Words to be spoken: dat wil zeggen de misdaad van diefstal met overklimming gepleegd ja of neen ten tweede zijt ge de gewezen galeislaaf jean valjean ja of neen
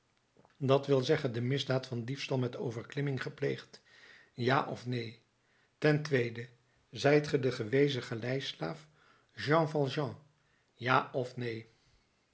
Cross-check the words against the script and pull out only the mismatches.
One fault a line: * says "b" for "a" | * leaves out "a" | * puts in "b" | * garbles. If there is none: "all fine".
all fine